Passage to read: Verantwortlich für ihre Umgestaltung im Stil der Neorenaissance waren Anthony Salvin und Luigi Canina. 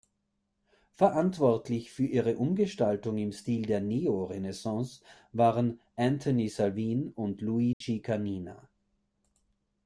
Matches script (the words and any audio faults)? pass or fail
fail